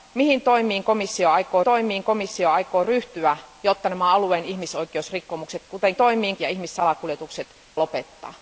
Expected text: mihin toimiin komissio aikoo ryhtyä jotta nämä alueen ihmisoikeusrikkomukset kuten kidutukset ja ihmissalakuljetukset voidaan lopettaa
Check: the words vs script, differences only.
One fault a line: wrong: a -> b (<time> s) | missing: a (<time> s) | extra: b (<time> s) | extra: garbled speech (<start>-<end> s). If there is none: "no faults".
extra: toimiin komissio aikoo (1.6 s)
wrong: kidutukset -> toimiin (5.9 s)
missing: voidaan (7.5 s)